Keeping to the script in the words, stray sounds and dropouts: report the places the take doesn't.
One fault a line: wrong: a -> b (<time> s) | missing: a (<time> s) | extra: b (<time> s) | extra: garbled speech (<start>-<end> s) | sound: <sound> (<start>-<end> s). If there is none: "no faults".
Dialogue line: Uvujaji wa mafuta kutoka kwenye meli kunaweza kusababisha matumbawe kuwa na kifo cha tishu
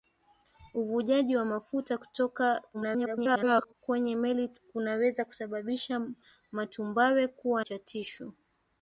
extra: garbled speech (2.7-3.7 s)
missing: na kifo (7.6 s)